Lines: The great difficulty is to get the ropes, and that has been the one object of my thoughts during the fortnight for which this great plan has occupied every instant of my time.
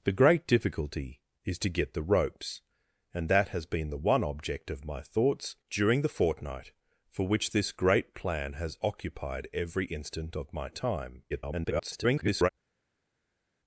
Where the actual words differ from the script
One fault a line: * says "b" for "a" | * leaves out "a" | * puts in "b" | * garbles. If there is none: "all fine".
* garbles